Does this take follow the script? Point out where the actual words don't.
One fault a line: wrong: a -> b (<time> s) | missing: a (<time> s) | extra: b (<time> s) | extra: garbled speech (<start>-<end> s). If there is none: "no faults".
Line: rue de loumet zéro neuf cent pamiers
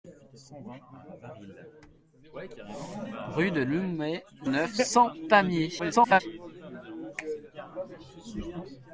missing: zéro (4.2 s)
extra: garbled speech (5.8-6.2 s)